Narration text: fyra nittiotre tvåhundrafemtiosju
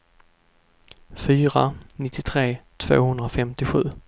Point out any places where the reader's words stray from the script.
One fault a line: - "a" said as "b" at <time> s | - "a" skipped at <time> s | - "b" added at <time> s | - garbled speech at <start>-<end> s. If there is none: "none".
none